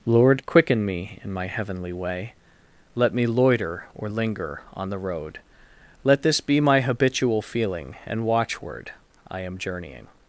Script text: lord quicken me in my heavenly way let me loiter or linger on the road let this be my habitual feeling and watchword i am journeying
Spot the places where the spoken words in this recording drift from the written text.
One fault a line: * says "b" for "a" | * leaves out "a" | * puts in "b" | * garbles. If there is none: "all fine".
all fine